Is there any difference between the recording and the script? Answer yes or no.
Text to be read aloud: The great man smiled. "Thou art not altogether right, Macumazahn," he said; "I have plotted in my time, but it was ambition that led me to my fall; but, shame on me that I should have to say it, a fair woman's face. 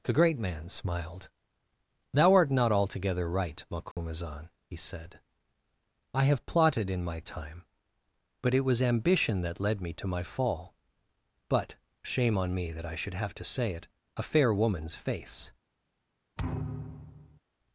no